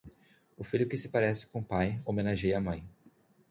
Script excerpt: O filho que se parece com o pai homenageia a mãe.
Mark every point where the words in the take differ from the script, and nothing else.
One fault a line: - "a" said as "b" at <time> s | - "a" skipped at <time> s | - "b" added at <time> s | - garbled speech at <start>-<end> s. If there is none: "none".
none